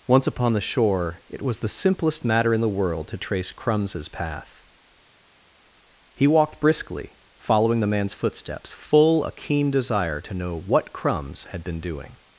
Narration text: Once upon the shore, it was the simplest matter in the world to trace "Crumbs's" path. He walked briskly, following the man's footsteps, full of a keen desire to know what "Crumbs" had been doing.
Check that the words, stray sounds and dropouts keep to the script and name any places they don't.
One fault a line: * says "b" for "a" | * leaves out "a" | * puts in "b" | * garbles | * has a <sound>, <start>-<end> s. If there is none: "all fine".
* leaves out "of"